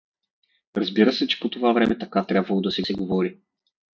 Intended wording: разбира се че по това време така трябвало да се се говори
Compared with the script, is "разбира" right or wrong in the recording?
right